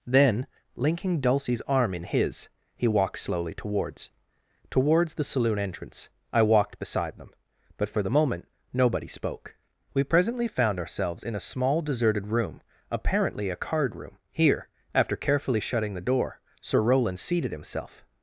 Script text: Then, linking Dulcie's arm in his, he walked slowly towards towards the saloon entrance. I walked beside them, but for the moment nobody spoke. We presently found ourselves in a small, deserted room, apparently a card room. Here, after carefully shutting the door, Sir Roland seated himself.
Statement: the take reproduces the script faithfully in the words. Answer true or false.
true